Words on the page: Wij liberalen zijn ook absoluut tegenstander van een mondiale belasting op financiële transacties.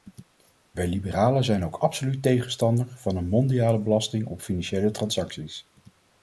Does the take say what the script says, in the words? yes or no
yes